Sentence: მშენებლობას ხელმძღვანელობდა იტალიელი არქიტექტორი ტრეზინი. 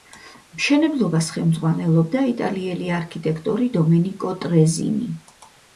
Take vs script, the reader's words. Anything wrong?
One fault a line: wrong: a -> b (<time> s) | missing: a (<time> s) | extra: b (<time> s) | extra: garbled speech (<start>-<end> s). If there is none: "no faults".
extra: დომენიკო (3.8 s)